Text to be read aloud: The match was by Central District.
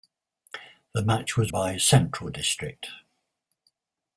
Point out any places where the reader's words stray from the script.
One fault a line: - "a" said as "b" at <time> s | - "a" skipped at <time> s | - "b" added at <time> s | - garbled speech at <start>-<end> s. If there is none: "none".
none